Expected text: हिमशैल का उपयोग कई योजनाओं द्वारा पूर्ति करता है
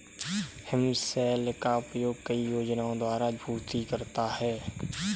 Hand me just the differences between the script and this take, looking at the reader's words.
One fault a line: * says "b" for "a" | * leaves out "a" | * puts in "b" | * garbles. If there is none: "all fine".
all fine